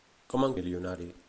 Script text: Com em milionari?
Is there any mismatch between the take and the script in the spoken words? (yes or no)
no